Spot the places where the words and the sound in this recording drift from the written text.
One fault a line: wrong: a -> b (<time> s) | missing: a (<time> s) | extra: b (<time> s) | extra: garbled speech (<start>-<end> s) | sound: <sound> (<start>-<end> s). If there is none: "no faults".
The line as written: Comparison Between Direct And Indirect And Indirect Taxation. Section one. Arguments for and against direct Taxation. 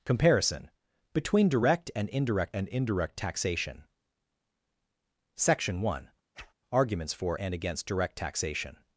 sound: whoosh (6.3-6.5 s)